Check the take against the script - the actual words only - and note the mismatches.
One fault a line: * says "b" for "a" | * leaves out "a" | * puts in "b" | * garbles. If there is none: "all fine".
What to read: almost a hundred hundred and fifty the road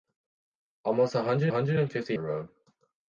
all fine